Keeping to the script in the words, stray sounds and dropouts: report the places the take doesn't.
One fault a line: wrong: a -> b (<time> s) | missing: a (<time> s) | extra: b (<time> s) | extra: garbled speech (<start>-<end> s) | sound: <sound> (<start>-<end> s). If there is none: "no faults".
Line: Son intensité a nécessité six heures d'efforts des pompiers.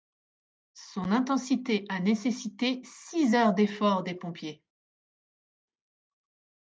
no faults